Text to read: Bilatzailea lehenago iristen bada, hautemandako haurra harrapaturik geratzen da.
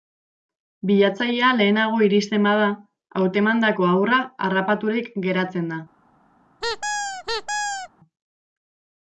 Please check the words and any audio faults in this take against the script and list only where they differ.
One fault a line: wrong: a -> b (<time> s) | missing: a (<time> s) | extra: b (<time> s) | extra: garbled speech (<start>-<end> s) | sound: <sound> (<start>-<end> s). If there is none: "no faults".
sound: squeak (6.6-7.9 s)